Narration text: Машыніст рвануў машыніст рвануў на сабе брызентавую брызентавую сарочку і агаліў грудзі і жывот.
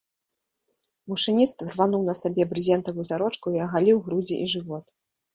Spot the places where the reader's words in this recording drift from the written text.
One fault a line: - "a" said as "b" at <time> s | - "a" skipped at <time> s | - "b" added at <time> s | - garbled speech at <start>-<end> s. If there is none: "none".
- "машыніст рвануў" skipped at 2.0 s
- "брызентавую" skipped at 3.0 s